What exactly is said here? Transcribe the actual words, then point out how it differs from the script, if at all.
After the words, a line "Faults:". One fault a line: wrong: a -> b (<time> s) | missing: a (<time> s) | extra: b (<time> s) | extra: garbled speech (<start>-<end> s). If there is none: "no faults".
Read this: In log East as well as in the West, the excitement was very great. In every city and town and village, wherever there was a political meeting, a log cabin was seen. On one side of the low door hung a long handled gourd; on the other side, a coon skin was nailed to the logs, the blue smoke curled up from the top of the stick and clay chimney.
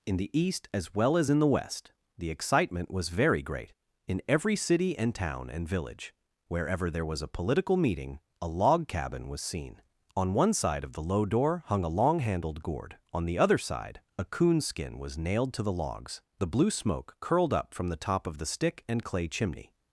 In the East as well as in the West, the excitement was very great. In every city and town and village, wherever there was a political meeting, a log cabin was seen. On one side of the low door hung a long handled gourd; on the other side, a coon skin was nailed to the logs, the blue smoke curled up from the top of the stick and clay chimney.
Faults:
wrong: log -> the (0.2 s)